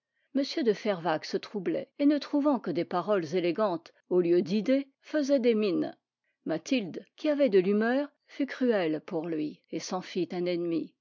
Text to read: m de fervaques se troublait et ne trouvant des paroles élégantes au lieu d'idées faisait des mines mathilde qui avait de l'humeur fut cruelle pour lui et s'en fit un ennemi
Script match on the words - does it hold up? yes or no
no